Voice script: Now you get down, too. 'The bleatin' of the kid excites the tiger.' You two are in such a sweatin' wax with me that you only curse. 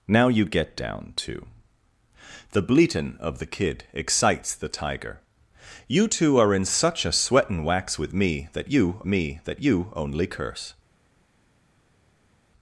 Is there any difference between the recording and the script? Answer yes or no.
yes